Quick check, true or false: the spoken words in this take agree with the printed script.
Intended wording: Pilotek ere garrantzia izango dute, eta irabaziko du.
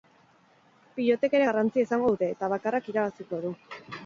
false